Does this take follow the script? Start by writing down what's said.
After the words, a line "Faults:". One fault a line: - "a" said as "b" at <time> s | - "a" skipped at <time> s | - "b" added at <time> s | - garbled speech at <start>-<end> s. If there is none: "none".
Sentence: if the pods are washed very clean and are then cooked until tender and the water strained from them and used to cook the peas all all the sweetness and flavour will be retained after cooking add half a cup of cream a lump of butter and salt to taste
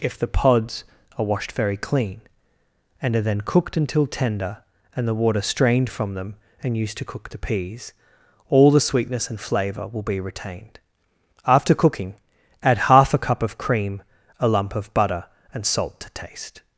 if the pods are washed very clean and are then cooked until tender and the water strained from them and used to cook the peas all the sweetness and flavour will be retained after cooking add half a cup of cream a lump of butter and salt to taste
Faults:
- "all" skipped at 8.7 s